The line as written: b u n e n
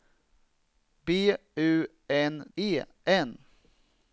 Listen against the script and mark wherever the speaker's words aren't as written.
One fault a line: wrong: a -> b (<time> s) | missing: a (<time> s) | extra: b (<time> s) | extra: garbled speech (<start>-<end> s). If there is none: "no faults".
no faults